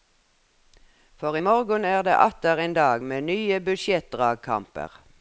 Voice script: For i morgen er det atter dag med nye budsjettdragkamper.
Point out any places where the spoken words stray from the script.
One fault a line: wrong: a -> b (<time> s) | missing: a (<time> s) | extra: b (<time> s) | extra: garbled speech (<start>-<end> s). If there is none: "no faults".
extra: en (2.6 s)